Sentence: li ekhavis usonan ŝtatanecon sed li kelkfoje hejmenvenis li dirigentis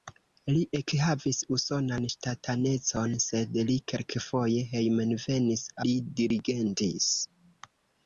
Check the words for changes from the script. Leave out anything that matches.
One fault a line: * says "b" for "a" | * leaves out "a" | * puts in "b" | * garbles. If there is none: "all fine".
all fine